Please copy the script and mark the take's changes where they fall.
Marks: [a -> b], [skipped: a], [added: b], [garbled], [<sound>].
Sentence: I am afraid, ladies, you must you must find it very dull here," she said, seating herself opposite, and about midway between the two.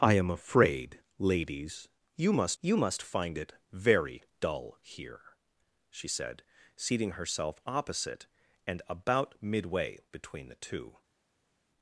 I am afraid, ladies, you must you must find it very dull here," she said, seating herself opposite, and about midway between the two.